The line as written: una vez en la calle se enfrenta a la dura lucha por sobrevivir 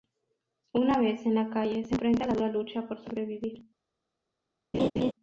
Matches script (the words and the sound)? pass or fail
fail